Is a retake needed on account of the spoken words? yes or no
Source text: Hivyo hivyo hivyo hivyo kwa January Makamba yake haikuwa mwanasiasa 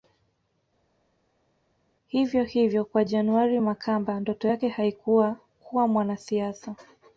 yes